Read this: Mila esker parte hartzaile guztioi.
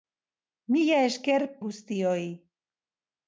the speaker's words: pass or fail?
fail